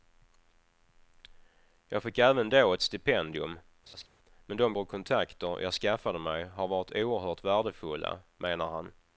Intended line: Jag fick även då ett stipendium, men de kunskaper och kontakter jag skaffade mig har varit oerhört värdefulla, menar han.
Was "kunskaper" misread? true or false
true